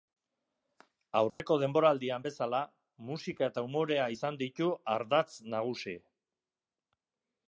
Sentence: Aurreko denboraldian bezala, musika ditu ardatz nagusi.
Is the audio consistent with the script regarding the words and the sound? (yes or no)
no